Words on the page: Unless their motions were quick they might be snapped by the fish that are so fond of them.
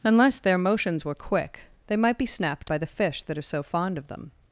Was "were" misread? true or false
false